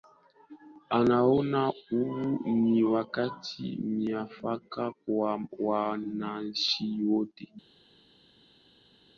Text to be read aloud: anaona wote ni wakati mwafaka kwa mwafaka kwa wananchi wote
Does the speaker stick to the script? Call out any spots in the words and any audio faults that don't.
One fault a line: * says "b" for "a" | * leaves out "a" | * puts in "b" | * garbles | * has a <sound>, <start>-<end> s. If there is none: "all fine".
* says "huu" for "wote"
* leaves out "mwafaka kwa"